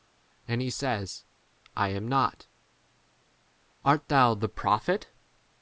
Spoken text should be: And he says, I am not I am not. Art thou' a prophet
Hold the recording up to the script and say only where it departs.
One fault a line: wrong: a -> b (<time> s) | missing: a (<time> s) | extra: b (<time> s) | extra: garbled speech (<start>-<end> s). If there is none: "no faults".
missing: I am not (2.5 s)
wrong: a -> the (4.3 s)